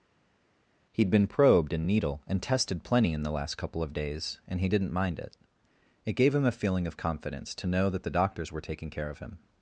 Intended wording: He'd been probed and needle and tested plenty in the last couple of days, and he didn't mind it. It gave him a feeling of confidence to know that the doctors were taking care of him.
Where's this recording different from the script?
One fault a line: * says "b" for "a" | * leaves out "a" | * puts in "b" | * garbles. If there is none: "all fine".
all fine